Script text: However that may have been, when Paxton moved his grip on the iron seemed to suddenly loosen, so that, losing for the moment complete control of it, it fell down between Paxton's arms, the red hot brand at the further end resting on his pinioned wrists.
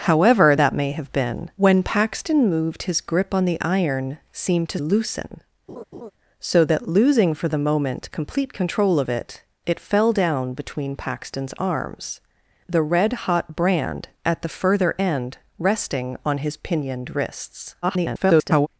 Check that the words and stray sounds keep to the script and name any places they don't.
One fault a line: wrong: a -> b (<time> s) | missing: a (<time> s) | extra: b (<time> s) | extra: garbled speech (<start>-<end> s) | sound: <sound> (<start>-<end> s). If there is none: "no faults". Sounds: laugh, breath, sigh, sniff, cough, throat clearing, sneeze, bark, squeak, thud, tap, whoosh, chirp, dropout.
missing: suddenly (4.8 s)
sound: laugh (5.7-6.1 s)
extra: garbled speech (17.8-18.7 s)